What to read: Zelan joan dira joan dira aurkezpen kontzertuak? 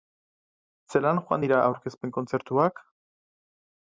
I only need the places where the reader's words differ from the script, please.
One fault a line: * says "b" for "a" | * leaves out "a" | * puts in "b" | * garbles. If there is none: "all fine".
* leaves out "joan dira"